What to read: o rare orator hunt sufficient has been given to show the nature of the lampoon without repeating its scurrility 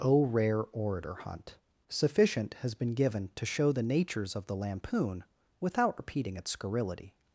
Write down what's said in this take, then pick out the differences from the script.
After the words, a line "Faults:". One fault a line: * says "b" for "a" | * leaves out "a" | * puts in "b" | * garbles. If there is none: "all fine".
o rare orator hunt sufficient has been given to show the natures of the lampoon without repeating its scurrility
Faults:
* says "natures" for "nature"